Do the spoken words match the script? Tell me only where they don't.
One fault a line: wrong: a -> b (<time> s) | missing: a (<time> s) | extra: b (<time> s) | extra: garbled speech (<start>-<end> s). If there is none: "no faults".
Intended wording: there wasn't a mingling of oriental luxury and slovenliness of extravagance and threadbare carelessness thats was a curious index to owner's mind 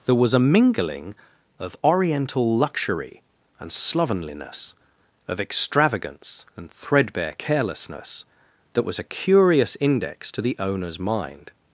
wrong: wasn't -> was (0.1 s)
wrong: thats -> that (8.7 s)
extra: the (10.4 s)